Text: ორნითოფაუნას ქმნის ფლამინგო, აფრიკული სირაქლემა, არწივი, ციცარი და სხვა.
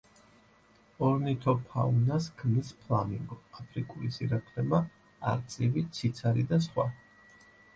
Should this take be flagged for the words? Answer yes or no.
no